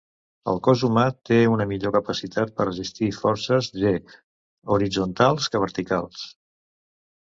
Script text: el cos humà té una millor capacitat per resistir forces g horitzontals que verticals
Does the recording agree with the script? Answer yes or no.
yes